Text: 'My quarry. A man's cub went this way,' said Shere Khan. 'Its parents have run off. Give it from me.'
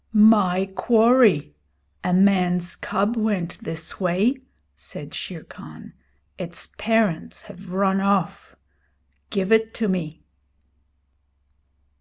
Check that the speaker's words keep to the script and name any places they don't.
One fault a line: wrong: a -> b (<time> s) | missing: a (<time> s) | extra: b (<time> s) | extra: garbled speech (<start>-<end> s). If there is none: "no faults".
wrong: from -> to (9.7 s)